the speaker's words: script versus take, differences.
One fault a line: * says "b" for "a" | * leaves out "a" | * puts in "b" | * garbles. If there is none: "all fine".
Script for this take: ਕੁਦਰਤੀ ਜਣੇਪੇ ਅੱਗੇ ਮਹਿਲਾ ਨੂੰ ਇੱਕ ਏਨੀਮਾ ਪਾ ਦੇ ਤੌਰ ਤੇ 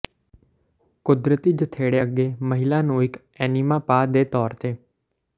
all fine